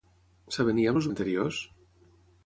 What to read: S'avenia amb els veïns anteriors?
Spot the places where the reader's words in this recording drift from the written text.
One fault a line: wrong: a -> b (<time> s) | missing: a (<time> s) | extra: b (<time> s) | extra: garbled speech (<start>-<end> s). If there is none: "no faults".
missing: veïns (1.1 s)